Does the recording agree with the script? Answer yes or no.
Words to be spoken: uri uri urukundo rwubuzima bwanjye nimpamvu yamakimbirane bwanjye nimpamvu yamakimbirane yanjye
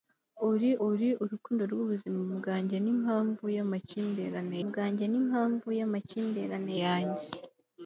yes